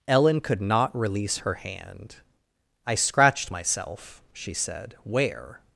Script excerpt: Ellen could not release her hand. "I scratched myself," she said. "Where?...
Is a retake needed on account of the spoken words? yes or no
no